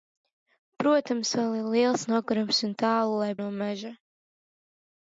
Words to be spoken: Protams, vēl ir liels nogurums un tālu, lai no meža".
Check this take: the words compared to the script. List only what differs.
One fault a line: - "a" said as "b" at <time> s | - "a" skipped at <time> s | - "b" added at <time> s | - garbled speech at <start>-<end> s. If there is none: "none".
none